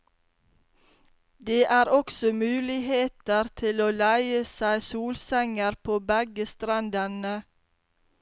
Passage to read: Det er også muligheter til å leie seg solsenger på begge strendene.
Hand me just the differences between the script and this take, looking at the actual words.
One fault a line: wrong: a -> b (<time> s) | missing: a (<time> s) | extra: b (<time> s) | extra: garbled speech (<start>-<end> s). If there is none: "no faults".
no faults